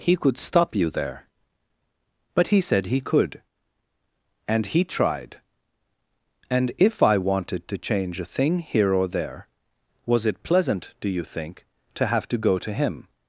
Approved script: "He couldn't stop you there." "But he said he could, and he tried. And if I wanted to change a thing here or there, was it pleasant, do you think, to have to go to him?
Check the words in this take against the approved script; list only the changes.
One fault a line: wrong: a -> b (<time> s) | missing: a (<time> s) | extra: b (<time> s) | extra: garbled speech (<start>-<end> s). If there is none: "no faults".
wrong: couldn't -> could (0.1 s)